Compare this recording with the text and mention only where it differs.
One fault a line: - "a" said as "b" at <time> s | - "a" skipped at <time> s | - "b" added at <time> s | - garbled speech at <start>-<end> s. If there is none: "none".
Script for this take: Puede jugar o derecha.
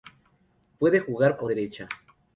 none